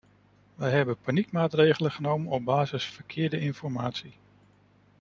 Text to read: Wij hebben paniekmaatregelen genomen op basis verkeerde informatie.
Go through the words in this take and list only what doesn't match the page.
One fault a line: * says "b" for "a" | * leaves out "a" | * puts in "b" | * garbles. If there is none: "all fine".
all fine